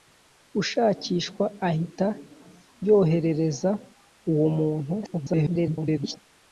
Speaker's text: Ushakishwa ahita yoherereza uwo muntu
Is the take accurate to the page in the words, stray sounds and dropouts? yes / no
no